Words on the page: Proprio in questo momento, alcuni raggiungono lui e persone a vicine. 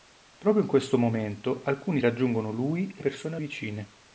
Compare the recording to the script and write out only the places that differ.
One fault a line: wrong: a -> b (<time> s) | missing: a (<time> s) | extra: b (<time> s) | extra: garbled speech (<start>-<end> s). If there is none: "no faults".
no faults